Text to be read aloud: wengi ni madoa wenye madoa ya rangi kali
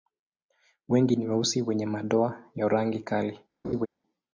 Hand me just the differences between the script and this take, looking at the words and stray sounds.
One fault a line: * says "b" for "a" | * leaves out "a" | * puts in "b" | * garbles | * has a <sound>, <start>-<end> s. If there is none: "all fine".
* says "weusi" for "madoa"
* has a laugh, 3.6-3.9 s